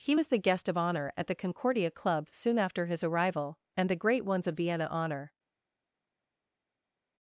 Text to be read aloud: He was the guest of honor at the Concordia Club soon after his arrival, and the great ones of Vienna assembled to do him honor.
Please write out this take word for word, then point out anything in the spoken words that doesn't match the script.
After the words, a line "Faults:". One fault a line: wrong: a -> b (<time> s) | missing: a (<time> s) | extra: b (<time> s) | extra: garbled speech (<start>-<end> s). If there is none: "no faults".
He was the guest of honor at the Concordia Club soon after his arrival, and the great ones of Vienna honor.
Faults:
missing: assembled to do him (4.9 s)